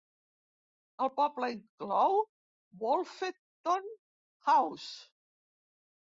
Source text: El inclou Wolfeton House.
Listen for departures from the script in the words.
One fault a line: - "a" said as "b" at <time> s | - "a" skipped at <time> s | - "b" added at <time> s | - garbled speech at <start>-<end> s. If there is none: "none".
- "poble" added at 1.2 s